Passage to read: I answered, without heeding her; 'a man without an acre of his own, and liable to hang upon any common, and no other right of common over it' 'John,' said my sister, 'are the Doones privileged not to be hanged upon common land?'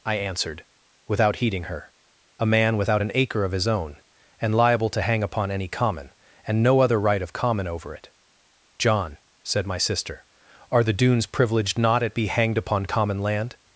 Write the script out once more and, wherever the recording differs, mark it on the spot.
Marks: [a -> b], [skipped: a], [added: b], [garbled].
I answered, without heeding her; 'a man without an acre of his own, and liable to hang upon any common, and no other right of common over it' 'John,' said my sister, 'are the Doones privileged not [to -> at] be hanged upon common land?'